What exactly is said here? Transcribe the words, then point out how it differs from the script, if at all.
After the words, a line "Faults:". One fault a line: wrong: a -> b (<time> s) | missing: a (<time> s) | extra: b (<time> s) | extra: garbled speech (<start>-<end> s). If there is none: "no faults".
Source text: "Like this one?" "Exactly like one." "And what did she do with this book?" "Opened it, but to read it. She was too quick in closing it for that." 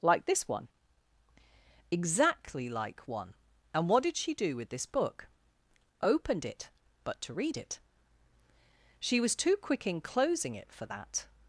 "Like this one?" "Exactly like one." "And what did she do with this book?" "Opened it, but to read it. She was too quick in closing it for that."
Faults:
no faults